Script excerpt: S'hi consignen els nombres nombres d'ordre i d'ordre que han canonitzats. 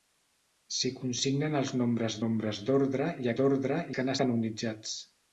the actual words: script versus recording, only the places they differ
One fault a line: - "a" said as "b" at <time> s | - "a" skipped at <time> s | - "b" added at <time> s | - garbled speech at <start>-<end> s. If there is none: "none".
none